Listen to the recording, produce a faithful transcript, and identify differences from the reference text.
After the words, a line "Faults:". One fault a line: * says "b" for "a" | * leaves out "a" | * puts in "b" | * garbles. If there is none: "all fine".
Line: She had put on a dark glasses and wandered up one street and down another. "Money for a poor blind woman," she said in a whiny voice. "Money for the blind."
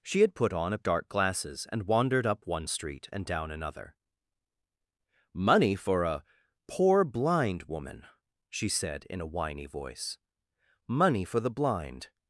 She had put on a dark glasses and wandered up one street and down another. "Money for a poor blind woman," she said in a whiny voice. "Money for the blind."
Faults:
all fine